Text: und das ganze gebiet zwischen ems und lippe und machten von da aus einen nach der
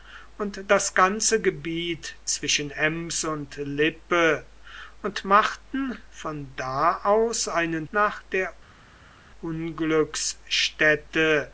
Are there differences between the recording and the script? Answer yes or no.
no